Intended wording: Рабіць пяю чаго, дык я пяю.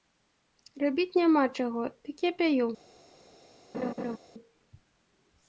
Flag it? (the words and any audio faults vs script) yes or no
yes